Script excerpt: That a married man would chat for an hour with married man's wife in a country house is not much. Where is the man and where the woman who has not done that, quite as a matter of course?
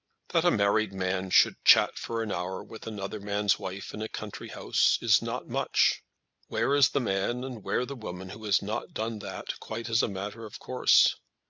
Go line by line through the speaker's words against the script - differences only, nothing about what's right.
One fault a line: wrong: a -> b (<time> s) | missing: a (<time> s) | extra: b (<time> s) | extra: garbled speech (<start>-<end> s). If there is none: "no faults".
wrong: would -> should (1.3 s)
wrong: married -> another (2.9 s)